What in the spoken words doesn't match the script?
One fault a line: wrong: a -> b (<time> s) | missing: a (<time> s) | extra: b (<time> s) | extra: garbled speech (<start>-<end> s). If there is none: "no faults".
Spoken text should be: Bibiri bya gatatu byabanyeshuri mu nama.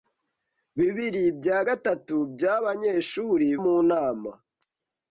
no faults